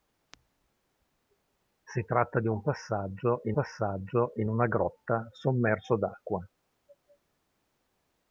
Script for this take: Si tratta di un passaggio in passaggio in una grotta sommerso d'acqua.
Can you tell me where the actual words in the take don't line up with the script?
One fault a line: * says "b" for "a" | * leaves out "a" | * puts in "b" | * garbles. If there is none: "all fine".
all fine